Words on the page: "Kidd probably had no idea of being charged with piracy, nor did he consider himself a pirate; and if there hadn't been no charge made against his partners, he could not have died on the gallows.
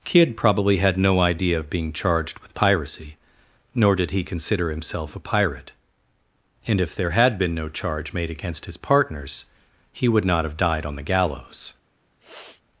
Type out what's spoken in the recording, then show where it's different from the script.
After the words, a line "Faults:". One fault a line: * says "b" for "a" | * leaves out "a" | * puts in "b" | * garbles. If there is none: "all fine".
"Kidd probably had no idea of being charged with piracy, nor did he consider himself a pirate; and if there had been no charge made against his partners, he would not have died on the gallows.
Faults:
* says "had" for "hadn't"
* says "would" for "could"